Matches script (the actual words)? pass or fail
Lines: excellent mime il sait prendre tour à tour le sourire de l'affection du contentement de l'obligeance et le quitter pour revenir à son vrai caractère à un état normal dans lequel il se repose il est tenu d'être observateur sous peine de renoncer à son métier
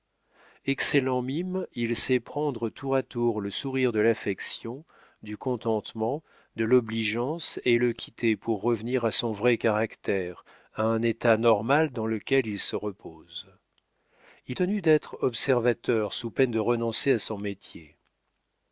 fail